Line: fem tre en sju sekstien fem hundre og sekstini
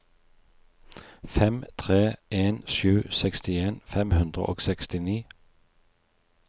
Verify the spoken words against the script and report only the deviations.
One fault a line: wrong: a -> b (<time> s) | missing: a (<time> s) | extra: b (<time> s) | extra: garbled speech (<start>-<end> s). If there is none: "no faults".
no faults